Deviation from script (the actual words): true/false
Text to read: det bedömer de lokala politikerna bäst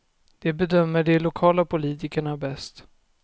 false